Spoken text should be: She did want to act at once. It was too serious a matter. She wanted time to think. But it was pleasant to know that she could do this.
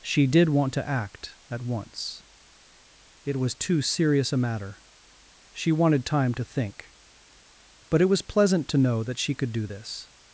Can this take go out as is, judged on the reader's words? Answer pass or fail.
pass